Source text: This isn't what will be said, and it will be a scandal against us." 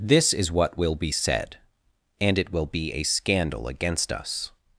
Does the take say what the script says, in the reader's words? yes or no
no